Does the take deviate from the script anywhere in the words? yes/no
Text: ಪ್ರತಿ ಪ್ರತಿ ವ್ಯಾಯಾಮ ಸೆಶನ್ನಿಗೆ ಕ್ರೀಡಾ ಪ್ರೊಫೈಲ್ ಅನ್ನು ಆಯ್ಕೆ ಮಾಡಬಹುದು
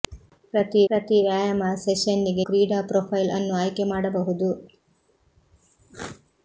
no